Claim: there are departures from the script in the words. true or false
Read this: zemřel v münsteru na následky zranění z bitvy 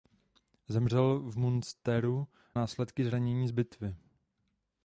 true